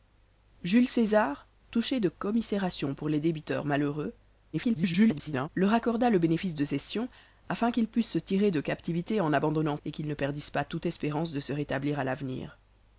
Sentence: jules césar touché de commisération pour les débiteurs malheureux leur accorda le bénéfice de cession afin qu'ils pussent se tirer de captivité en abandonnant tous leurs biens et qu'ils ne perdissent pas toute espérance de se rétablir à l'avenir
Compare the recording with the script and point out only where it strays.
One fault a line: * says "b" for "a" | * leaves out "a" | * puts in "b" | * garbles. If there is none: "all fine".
* garbles
* leaves out "tous leurs biens"